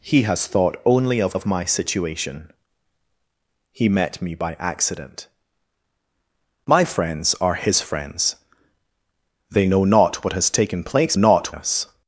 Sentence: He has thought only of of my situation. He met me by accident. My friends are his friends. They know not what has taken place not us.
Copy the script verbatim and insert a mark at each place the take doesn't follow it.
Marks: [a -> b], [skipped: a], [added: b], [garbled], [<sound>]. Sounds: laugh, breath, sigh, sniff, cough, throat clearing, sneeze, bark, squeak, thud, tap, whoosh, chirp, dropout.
He has thought only of of my situation. He met me by accident. My friends are his friends. They know not what has taken place not us.